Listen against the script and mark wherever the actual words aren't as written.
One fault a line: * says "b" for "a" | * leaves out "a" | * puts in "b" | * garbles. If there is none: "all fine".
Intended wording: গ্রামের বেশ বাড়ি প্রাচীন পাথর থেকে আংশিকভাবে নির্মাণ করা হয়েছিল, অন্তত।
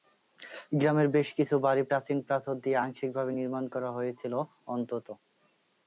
* puts in "কিছু"
* says "দিয়ে" for "থেকে"